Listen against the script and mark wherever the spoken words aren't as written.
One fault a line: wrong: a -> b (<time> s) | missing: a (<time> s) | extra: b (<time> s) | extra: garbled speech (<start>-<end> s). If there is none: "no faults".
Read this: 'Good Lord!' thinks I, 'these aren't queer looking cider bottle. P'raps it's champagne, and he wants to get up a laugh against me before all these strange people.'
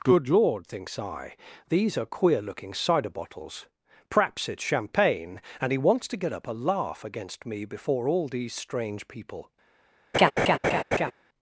wrong: aren't -> are (1.9 s)
wrong: bottle -> bottles (3.1 s)